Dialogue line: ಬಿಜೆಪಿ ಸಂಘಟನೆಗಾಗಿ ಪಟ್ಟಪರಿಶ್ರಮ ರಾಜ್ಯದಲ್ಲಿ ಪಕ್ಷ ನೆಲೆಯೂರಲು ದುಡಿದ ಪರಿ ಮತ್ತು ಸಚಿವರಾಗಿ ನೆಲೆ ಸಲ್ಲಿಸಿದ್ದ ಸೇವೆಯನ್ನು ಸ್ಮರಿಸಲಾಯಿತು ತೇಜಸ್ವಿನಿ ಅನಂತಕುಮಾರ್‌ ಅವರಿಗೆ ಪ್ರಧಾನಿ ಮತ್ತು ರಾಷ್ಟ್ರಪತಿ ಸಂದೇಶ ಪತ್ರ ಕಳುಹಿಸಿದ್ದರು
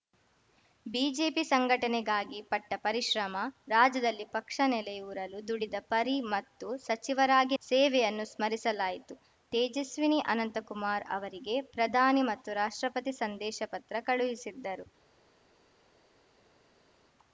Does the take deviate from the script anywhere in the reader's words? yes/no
yes